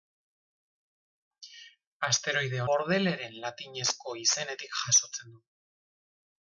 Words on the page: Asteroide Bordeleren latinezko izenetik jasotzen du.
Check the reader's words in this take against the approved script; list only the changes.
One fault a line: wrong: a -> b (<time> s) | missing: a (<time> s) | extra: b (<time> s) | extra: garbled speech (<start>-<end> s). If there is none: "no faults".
no faults